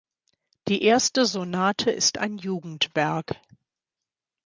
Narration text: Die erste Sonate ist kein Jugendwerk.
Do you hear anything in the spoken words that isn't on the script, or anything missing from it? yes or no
yes